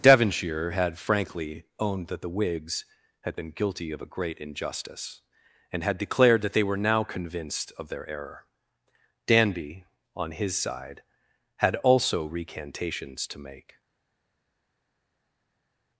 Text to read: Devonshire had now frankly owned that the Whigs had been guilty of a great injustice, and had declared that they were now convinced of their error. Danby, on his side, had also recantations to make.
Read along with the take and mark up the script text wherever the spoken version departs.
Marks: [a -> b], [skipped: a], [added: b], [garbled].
Devonshire had [skipped: now] frankly owned that the Whigs had been guilty of a great injustice, and had declared that they were now convinced of their error. Danby, on his side, had also recantations to make.